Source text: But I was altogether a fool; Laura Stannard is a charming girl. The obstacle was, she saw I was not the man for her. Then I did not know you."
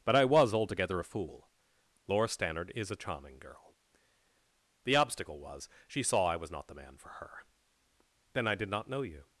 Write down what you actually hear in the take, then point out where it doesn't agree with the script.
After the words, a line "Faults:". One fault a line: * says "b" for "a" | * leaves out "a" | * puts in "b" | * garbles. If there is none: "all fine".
But I was altogether a fool; Laura Stannard is a charming girl. The obstacle was, she saw I was not the man for her. Then I did not know you."
Faults:
all fine